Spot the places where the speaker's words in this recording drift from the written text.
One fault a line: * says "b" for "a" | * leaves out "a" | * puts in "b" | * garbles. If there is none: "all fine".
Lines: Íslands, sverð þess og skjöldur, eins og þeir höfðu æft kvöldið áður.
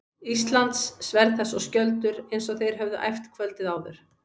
all fine